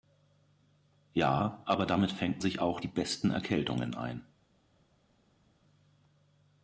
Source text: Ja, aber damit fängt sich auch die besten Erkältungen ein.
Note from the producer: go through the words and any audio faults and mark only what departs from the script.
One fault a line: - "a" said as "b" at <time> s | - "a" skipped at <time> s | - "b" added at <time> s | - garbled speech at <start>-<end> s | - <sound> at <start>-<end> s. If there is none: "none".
none